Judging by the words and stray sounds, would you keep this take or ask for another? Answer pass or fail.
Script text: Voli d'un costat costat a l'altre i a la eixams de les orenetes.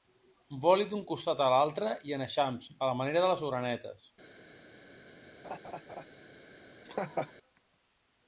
fail